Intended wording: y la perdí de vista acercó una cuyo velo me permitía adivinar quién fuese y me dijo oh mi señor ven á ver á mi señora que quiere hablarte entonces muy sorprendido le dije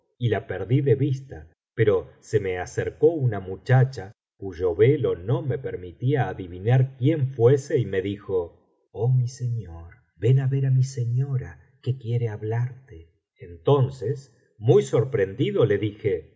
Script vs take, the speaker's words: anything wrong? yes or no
yes